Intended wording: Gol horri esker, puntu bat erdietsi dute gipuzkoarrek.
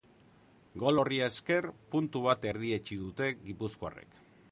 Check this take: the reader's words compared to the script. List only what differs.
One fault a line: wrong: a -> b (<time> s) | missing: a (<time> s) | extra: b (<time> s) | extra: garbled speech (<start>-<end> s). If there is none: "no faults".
no faults